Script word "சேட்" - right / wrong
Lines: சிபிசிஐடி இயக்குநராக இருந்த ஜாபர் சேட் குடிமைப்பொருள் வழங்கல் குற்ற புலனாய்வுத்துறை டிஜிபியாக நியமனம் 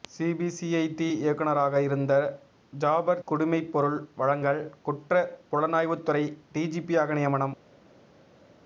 wrong